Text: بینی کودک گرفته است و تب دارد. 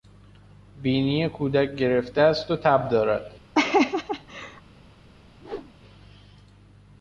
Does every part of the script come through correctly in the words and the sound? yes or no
no